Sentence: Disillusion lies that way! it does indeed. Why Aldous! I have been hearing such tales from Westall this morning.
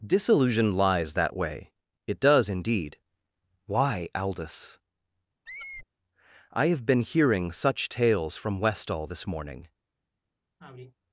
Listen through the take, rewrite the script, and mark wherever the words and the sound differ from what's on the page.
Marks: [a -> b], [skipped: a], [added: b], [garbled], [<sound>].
Disillusion lies that way! it does indeed. Why Aldous! [squeak] I have been hearing such tales from Westall this morning. [sigh]